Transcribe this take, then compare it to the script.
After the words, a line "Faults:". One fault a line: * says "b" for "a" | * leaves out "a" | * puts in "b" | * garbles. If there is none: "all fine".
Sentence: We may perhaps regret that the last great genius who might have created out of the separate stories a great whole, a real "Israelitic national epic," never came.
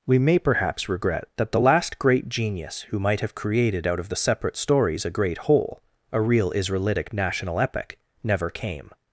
We may perhaps regret that the last great genius who might have created out of the separate stories a great whole, a real "Israelitic national epic," never came.
Faults:
all fine